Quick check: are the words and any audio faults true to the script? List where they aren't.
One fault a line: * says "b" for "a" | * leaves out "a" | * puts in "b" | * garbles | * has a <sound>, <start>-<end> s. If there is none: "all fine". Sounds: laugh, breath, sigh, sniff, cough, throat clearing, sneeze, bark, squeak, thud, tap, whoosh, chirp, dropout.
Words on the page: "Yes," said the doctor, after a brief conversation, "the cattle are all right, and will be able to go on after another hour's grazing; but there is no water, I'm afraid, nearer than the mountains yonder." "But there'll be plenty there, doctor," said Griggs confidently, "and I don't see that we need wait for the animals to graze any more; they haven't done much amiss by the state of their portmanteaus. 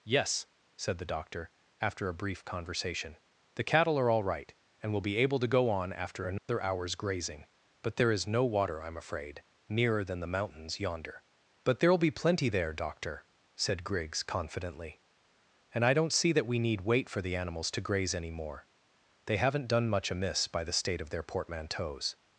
* has a dropout, 6.4-6.5 s